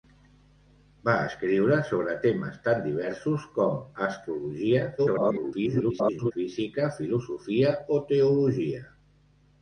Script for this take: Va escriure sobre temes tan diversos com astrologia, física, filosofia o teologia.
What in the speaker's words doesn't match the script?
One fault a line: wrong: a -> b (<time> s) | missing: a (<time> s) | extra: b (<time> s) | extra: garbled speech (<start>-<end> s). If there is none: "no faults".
extra: garbled speech (5.0-6.3 s)